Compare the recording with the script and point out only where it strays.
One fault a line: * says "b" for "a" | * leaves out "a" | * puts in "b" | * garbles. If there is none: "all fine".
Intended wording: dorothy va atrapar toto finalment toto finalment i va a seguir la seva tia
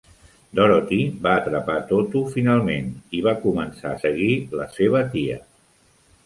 * leaves out "toto finalment"
* puts in "començar"